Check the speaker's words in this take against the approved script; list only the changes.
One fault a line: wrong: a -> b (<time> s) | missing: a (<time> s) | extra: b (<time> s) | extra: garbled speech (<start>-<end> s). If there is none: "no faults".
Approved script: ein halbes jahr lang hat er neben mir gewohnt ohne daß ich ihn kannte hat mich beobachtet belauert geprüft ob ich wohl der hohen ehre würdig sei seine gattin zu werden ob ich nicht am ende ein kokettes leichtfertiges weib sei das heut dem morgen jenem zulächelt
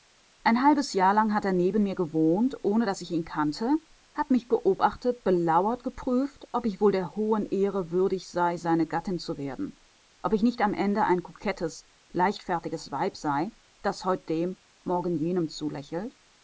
no faults